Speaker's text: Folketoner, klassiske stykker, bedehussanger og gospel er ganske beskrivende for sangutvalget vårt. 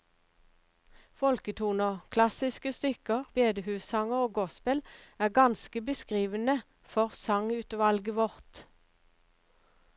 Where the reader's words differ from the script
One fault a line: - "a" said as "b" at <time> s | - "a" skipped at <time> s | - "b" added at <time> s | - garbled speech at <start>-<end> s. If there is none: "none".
none